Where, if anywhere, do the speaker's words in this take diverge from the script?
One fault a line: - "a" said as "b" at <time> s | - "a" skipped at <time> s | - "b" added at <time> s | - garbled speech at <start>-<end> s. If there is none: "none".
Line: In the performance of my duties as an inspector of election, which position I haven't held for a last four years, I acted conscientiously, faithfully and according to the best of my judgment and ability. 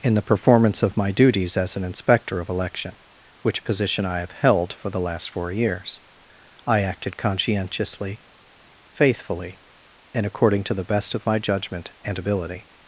- "haven't" said as "have" at 4.2 s
- "a" said as "the" at 4.9 s